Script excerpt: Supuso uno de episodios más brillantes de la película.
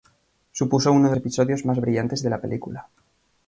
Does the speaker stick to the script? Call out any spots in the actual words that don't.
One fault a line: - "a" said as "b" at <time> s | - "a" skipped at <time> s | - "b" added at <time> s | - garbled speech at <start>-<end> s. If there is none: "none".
none